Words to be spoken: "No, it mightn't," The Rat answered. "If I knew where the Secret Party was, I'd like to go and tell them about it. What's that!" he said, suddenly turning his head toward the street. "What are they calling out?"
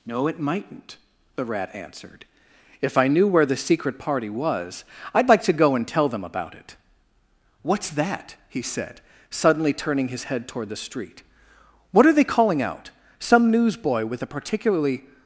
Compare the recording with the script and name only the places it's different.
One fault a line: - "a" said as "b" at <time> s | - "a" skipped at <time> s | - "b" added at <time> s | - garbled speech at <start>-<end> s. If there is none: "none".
- "Some newsboy with a particularly" added at 13.2 s